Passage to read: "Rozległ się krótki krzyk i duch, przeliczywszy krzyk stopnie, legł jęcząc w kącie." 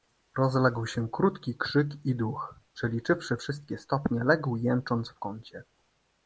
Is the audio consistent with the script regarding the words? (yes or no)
no